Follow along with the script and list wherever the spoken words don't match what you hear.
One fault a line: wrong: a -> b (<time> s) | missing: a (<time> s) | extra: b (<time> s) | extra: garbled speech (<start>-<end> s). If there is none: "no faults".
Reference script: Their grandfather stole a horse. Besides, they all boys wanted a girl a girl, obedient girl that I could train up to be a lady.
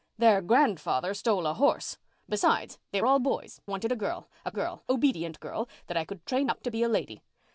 no faults